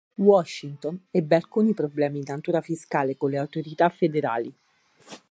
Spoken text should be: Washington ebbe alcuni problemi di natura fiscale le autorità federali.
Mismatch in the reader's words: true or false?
true